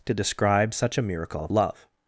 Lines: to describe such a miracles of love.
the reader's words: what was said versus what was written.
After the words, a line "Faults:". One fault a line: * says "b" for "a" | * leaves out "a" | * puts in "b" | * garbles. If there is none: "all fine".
to describe such a miracle of love.
Faults:
* says "miracle" for "miracles"